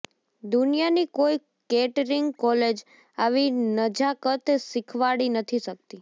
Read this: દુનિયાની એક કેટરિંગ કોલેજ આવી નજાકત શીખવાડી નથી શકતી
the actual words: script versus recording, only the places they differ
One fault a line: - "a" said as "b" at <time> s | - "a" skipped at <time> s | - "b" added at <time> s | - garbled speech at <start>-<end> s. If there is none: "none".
- "એક" said as "કોઈ" at 1.2 s